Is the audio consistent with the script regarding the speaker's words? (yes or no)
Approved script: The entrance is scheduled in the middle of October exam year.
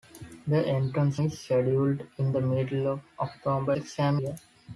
yes